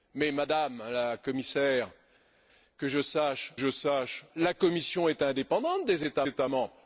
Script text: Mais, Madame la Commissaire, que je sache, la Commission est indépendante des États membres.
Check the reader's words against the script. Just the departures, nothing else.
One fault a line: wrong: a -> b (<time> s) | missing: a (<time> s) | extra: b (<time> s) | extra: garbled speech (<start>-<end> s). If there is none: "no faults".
extra: je sache (3.6 s)
extra: États (6.3 s)